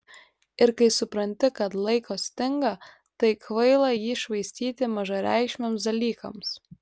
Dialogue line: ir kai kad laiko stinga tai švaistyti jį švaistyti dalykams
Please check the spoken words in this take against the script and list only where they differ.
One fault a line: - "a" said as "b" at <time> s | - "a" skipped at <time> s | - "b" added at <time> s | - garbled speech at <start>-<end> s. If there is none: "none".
- "supranti" added at 0.9 s
- "švaistyti" said as "kvaila" at 3.5 s
- "mažareikšmiams" added at 4.9 s